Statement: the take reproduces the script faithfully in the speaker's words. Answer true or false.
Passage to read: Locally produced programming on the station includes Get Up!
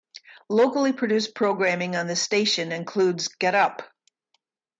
true